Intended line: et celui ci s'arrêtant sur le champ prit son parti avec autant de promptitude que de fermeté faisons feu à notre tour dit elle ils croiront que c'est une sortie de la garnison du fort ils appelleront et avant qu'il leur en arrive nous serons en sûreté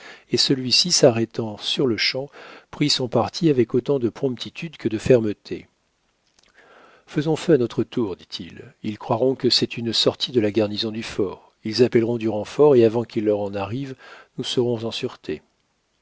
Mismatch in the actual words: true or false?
true